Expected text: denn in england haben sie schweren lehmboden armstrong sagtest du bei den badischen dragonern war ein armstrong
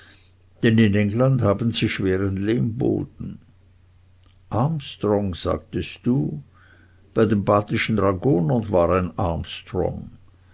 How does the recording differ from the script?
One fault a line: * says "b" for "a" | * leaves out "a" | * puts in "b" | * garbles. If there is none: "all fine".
all fine